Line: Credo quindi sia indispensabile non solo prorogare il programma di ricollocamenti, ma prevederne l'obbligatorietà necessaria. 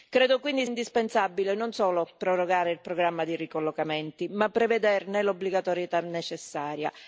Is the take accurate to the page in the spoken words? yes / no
no